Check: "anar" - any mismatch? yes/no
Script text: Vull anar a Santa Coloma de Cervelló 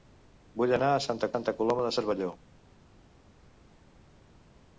no